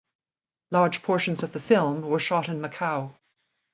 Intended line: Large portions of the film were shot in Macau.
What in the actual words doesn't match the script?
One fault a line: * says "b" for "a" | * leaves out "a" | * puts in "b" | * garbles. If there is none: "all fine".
all fine